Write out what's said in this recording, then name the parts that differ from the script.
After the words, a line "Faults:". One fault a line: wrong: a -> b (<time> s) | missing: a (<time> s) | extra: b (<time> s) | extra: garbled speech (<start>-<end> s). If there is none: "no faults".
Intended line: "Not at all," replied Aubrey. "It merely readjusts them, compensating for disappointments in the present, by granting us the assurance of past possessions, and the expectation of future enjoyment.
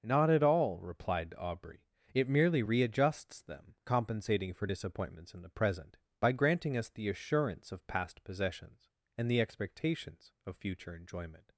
"Not at all," replied Aubrey. "It merely readjusts them, compensating for disappointments in the present, by granting us the assurance of past possessions, and the expectations of future enjoyment.
Faults:
wrong: expectation -> expectations (9.4 s)